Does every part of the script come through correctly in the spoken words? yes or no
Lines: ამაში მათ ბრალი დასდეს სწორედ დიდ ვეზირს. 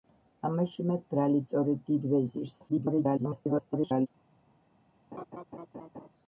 no